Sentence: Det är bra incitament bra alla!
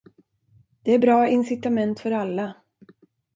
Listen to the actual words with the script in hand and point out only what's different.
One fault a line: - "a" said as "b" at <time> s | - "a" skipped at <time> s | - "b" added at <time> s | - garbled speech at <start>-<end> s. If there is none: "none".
- "bra" said as "för" at 2.0 s